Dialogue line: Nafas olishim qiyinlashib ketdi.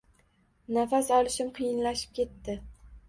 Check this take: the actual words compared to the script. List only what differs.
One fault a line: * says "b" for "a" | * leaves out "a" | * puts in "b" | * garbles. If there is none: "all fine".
all fine